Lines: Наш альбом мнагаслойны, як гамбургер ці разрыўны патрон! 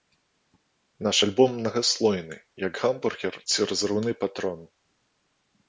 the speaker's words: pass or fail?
pass